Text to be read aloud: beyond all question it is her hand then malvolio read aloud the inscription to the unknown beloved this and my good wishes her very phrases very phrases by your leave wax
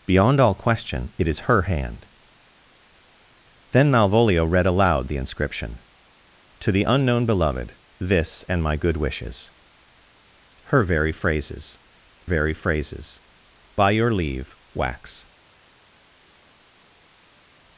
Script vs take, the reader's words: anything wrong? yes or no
no